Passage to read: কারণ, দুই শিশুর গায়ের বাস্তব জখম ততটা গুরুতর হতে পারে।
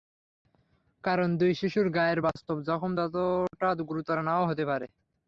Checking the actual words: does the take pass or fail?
fail